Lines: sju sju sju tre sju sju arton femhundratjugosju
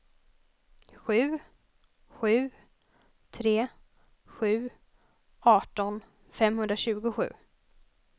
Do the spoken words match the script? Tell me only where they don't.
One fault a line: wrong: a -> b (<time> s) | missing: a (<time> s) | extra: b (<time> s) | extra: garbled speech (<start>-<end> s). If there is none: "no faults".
missing: sju (2.5 s)
missing: sju (4.7 s)